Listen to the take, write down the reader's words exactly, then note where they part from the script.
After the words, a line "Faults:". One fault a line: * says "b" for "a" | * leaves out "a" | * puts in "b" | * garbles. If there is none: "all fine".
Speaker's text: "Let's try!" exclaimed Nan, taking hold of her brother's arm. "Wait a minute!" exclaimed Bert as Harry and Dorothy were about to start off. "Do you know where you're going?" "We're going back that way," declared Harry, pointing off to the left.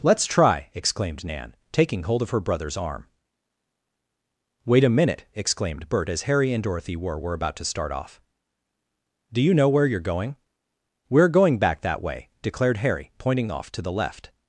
"Let's try!" exclaimed Nan, taking hold of her brother's arm. "Wait a minute!" exclaimed Bert as Harry and Dorothy were were about to start off. "Do you know where you're going?" "We're going back that way," declared Harry, pointing off to the left.
Faults:
* puts in "were"